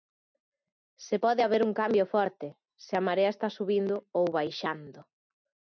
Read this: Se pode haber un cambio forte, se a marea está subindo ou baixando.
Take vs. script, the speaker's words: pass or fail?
pass